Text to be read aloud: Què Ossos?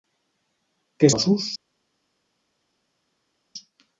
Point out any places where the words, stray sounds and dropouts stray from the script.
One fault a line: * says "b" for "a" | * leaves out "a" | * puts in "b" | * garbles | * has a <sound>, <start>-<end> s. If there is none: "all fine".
all fine